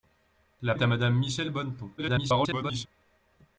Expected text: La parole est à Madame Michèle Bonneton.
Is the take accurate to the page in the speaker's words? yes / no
no